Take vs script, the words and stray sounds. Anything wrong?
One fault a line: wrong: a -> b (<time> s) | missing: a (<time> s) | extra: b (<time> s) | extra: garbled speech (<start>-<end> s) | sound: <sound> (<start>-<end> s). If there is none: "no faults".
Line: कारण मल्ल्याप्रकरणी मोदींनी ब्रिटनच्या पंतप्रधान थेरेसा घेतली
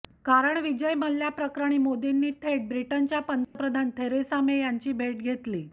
extra: विजय (0.6 s)
extra: थेट (2.4 s)
sound: dropout (3.4-3.6 s)
extra: मे यांची भेट (4.4 s)